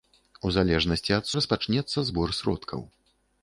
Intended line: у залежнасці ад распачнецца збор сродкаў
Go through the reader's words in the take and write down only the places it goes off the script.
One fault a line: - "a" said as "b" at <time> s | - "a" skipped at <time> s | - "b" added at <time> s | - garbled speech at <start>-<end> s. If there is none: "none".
none